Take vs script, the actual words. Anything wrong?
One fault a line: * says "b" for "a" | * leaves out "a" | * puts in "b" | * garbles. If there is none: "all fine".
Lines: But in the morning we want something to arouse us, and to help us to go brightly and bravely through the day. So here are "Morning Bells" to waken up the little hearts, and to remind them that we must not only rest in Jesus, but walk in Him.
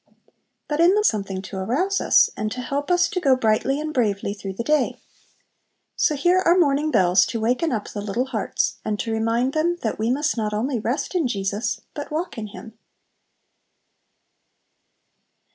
* leaves out "morning we want"